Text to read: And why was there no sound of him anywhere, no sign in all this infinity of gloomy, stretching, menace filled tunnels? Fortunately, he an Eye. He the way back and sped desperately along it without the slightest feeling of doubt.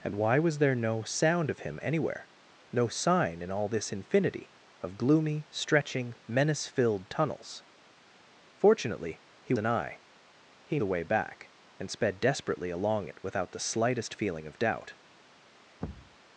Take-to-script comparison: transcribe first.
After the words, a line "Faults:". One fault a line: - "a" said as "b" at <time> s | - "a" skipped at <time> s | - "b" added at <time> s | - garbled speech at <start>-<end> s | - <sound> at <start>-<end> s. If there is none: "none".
And why was there no sound of him anywhere, no sign in all this infinity of gloomy, stretching, menace filled tunnels? Fortunately, he an Eye. He the way back and sped desperately along it without the slightest feeling of doubt.
Faults:
- thud at 15.8-16.2 s